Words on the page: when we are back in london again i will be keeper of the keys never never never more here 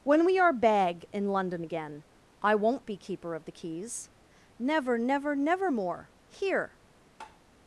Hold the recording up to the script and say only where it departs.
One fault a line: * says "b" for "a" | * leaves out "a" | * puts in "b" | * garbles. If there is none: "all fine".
* says "bag" for "back"
* says "won't" for "will"